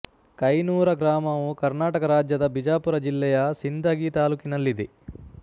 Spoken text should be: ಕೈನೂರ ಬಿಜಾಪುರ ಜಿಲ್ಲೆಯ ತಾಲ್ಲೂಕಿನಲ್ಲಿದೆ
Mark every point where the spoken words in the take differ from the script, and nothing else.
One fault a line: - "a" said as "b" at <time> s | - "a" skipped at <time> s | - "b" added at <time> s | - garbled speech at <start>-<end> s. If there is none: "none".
- "ಗ್ರಾಮವು ಕರ್ನಾಟಕ ರಾಜ್ಯದ" added at 0.9 s
- "ಸಿಂದಗಿ" added at 3.6 s